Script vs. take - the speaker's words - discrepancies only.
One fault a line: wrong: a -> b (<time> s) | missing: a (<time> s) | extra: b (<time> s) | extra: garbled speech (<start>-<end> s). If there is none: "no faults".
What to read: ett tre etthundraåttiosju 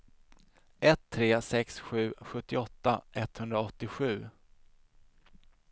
extra: sex sju sjuttioåtta (1.4 s)